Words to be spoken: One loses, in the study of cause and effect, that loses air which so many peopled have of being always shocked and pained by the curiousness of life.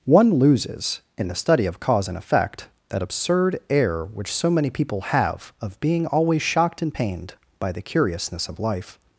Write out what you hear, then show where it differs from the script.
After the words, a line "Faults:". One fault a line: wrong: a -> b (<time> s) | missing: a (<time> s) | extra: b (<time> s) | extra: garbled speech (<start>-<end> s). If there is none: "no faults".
One loses, in the study of cause and effect, that absurd air which so many people have of being always shocked and pained by the curiousness of life.
Faults:
wrong: loses -> absurd (3.0 s)
wrong: peopled -> people (4.7 s)